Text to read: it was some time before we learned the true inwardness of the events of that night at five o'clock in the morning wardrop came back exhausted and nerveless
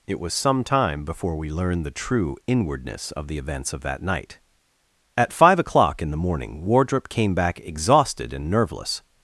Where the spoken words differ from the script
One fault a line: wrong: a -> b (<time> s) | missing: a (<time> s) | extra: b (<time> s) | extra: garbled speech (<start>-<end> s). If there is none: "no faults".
no faults